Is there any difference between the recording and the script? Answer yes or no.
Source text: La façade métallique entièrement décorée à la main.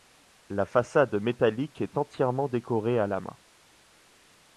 yes